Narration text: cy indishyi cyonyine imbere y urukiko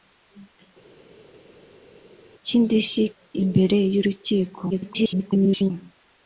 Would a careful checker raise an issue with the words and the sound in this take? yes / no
yes